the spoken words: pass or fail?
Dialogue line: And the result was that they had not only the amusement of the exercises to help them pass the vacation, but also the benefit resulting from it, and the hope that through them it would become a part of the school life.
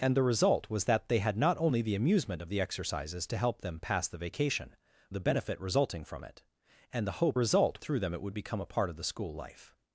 fail